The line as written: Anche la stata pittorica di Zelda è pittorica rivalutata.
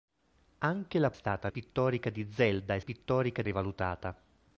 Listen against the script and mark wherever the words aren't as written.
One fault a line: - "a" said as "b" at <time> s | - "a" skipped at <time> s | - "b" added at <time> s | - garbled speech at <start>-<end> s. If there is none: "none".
none